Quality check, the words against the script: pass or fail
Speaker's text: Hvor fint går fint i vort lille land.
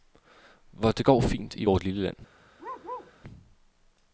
fail